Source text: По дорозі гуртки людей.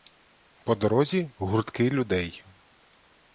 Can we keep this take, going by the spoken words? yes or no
yes